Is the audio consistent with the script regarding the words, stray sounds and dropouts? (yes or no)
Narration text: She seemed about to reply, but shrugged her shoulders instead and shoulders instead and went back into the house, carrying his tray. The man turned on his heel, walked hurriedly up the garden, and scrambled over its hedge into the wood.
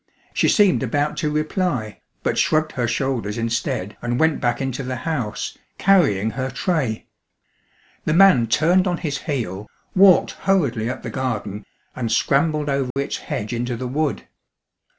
no